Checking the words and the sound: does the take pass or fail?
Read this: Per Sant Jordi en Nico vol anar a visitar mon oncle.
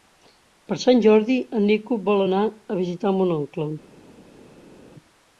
pass